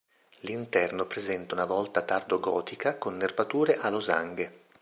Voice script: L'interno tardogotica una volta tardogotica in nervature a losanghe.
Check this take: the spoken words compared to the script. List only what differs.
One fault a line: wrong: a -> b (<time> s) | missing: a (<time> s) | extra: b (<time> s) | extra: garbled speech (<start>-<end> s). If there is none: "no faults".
wrong: tardogotica -> presenta (1.1 s)
wrong: in -> con (3.0 s)